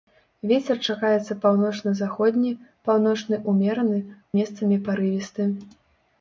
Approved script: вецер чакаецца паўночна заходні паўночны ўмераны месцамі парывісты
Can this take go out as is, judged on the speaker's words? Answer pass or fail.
pass